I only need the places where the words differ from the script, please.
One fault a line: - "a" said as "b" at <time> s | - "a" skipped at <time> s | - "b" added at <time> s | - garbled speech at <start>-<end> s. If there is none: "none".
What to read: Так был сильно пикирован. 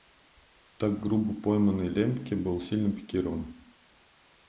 - "грубо пойманный Лембке" added at 1.0 s